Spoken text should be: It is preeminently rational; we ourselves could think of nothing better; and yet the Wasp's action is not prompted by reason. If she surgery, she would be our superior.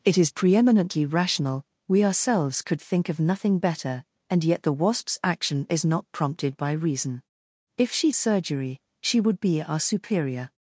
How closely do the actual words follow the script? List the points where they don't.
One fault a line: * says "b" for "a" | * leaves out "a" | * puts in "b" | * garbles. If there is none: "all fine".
all fine